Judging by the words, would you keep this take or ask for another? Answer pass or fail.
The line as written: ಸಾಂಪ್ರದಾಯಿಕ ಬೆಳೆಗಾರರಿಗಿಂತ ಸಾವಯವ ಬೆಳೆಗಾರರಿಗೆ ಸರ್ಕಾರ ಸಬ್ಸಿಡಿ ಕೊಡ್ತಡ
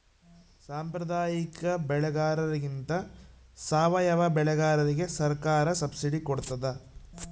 pass